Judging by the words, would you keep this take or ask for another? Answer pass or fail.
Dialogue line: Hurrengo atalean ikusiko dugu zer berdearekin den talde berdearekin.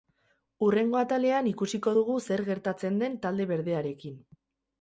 fail